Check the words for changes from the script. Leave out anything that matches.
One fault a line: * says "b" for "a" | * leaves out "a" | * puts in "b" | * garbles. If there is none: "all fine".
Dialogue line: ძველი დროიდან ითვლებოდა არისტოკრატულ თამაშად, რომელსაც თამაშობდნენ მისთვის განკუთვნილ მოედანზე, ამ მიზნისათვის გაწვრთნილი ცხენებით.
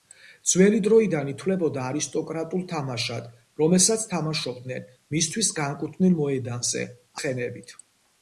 * leaves out "ამ მიზნისათვის გაწვრთნილი"